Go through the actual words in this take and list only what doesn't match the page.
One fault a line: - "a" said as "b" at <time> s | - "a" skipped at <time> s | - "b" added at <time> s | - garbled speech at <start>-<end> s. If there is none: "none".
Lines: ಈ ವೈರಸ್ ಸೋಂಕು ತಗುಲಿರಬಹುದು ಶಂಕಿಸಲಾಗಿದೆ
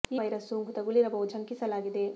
none